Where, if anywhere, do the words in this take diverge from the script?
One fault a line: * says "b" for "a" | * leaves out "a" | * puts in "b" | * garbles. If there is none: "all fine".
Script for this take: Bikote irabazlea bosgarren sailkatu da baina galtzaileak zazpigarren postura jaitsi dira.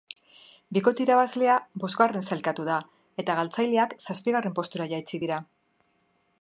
* says "eta" for "baina"